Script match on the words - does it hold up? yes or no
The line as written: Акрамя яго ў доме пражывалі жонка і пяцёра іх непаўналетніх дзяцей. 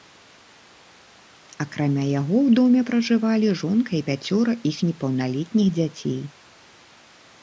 yes